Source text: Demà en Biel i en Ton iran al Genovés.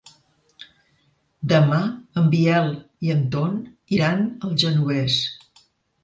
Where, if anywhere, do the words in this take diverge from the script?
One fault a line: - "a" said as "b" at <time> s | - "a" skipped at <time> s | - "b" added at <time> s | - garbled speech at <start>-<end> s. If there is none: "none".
none